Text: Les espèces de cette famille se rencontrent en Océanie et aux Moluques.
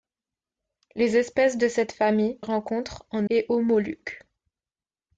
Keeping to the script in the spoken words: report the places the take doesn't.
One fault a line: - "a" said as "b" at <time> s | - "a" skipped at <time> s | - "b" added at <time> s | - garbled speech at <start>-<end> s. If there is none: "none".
- "se" skipped at 2.4 s
- "Océanie" skipped at 3.3 s